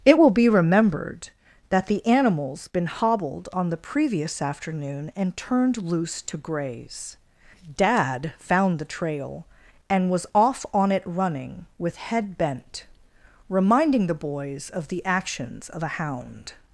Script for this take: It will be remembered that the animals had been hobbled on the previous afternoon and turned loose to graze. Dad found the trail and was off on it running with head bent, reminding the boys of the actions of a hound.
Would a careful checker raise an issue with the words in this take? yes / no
yes